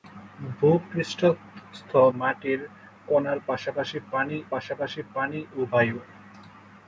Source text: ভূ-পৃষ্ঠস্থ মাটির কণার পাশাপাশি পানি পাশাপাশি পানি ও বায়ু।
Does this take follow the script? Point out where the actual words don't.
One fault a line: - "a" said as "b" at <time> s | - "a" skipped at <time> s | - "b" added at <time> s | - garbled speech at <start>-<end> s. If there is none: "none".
none